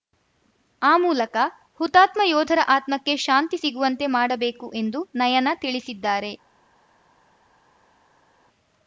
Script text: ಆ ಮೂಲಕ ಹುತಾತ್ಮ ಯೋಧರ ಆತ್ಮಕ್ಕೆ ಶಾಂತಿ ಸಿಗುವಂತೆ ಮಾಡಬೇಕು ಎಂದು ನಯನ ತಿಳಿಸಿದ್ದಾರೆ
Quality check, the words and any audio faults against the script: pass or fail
pass